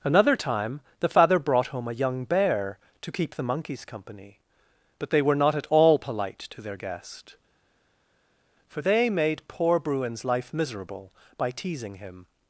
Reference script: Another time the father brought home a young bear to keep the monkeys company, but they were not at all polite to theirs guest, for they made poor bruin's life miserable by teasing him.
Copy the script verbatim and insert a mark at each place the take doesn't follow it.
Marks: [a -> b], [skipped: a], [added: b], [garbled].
Another time the father brought home a young bear to keep the monkeys company, but they were not at all polite to [theirs -> their] guest, for they made poor bruin's life miserable by teasing him.